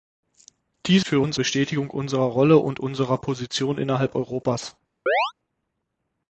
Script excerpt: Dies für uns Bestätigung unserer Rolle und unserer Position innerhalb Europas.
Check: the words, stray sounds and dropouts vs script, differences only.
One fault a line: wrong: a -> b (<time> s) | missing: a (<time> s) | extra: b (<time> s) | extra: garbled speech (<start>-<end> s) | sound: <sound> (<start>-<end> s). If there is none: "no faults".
sound: chirp (5.1-5.3 s)